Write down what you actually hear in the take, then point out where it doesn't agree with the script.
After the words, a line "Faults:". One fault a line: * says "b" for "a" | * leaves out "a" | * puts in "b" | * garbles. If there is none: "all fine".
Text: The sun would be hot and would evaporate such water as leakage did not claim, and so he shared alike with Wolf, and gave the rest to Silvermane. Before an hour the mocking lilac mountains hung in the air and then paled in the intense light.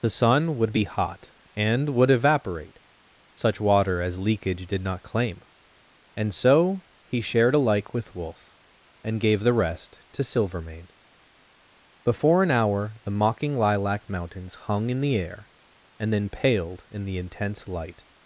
The sun would be hot and would evaporate such water as leakage did not claim, and so he shared alike with Wolf, and gave the rest to Silvermane. Before an hour the mocking lilac mountains hung in the air and then paled in the intense light.
Faults:
all fine